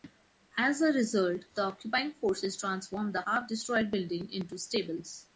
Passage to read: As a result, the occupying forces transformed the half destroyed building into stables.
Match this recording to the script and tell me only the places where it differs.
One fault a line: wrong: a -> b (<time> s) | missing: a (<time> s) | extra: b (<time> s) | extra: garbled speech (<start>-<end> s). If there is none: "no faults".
no faults